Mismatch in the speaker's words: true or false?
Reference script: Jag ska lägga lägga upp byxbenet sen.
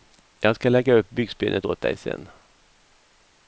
true